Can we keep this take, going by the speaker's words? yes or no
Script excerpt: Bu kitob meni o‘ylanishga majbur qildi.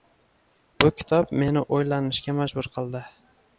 yes